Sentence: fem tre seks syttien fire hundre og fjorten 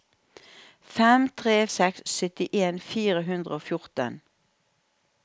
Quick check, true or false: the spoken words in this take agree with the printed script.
true